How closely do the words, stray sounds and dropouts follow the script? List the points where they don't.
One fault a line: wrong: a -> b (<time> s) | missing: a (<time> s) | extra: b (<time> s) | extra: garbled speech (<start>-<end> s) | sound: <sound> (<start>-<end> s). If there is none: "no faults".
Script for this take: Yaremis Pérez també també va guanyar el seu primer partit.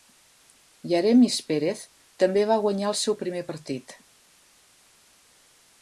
missing: també (2.5 s)